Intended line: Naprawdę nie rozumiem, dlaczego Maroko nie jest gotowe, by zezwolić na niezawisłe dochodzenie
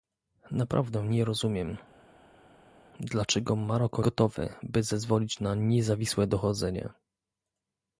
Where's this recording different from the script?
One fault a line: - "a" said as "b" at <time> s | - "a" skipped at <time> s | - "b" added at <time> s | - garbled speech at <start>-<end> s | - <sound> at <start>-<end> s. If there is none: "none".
- "nie jest" skipped at 4.0 s